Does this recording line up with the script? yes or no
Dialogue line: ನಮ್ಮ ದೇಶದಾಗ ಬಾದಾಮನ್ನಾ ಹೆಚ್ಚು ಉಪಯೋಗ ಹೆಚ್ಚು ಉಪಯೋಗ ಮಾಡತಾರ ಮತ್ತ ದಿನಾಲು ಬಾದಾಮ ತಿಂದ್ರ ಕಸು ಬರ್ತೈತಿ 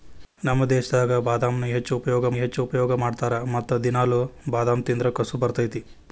yes